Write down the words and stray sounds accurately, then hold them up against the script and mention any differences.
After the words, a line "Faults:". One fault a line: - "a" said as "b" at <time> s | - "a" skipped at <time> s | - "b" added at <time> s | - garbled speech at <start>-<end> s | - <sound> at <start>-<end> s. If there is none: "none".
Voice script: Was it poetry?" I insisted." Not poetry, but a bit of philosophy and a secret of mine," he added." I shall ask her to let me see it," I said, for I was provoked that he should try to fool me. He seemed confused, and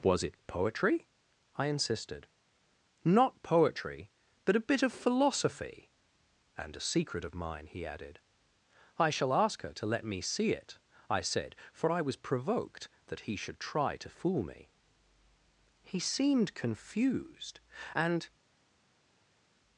Was it poetry?" I insisted." Not poetry, but a bit of philosophy and a secret of mine," he added." I shall ask her to let me see it," I said, for I was provoked that he should try to fool me. He seemed confused, and
Faults:
none